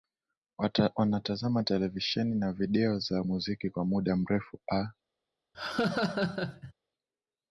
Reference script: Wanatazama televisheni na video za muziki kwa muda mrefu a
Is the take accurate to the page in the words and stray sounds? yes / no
no